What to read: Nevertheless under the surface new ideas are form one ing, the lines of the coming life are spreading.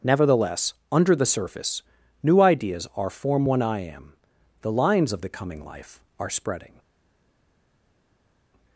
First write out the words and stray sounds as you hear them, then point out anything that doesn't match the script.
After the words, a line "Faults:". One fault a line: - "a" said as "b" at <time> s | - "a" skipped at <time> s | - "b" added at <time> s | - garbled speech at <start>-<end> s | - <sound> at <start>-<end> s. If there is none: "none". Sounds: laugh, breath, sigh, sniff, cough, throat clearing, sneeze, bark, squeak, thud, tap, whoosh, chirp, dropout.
Nevertheless under the surface new ideas are form one I am, the lines of the coming life are spreading.
Faults:
- "ing" said as "I am" at 3.6 s